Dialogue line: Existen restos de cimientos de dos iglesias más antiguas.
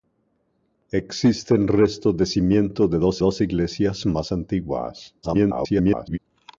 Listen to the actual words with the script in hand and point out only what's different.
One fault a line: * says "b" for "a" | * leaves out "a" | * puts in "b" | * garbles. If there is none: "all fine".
* puts in "dos"
* garbles